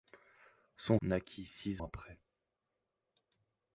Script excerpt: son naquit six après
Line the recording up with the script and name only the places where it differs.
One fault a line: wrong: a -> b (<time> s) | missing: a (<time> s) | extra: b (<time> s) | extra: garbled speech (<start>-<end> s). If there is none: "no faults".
no faults